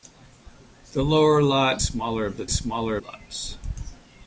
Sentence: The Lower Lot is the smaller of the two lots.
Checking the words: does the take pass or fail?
fail